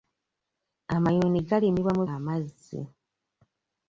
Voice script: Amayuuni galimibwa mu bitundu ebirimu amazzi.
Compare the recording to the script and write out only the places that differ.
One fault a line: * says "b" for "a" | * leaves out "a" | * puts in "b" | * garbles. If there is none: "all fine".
* leaves out "bitundu ebirimu"